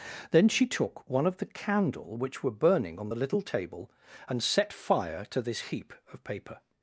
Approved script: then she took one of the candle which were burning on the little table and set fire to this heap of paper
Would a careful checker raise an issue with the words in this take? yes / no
no